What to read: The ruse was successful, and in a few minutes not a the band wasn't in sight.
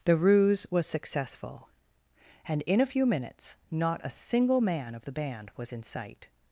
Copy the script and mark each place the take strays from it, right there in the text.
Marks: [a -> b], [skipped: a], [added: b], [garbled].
The ruse was successful, and in a few minutes not a [added: single man of] the band [wasn't -> was] in sight.